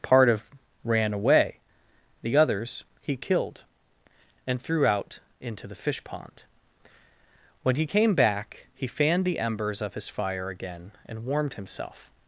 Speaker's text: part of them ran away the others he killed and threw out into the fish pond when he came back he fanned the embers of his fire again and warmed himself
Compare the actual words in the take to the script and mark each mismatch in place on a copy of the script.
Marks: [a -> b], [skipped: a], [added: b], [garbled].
part of [skipped: them] ran away the others he killed and threw out into the fish pond when he came back he fanned the embers of his fire again and warmed himself